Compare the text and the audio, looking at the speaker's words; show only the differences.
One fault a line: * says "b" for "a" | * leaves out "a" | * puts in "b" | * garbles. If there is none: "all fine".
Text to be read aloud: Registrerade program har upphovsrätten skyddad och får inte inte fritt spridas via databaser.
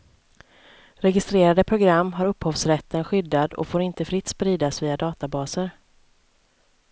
* leaves out "inte"